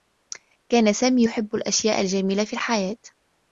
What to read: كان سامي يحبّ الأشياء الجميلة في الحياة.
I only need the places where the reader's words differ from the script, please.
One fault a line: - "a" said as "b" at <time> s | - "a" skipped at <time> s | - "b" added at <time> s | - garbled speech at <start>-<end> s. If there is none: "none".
none